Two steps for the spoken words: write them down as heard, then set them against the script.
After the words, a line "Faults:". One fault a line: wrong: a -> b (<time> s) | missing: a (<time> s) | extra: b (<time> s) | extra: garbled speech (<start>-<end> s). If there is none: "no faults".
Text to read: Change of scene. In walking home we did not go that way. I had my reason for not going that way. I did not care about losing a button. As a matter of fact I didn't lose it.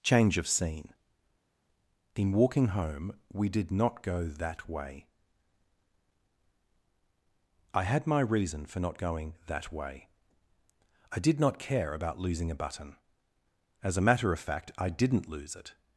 Change of scene. In walking home we did not go that way. I had my reason for not going that way. I did not care about losing a button. As a matter of fact I didn't lose it.
Faults:
no faults